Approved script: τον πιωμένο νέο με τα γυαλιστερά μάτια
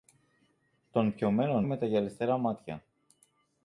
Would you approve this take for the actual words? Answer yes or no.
no